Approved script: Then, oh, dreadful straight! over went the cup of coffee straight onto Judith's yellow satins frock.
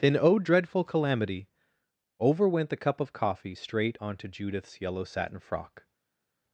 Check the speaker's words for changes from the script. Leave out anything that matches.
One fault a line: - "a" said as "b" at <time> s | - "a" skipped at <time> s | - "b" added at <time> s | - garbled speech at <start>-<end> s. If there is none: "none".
- "straight" said as "calamity" at 0.8 s
- "satins" said as "satin" at 5.0 s